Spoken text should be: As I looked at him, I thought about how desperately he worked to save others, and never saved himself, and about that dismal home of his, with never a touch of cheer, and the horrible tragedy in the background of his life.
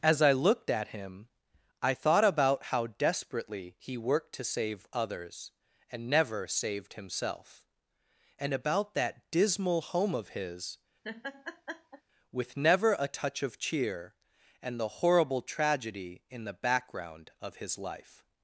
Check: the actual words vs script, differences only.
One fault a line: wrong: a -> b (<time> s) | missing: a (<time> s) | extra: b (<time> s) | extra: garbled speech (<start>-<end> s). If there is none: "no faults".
no faults